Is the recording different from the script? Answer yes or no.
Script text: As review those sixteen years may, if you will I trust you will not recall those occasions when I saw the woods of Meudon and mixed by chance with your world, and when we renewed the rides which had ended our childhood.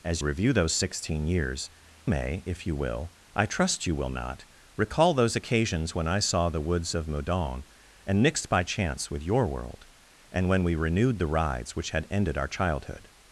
no